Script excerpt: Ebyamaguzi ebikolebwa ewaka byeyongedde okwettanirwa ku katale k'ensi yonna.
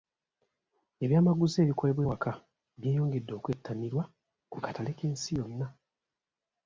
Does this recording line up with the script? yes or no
yes